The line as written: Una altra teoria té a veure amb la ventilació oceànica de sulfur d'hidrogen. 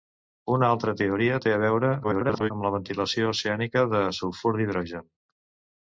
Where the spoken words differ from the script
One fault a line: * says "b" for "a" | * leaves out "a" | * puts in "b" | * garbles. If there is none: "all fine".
* garbles